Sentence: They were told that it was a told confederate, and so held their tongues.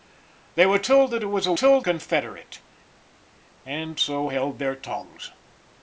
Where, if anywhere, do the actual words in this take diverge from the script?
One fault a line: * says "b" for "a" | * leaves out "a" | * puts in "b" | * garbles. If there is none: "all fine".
all fine